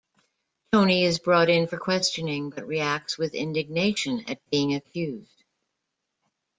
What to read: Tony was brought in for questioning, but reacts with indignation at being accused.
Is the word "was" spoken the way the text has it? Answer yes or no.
no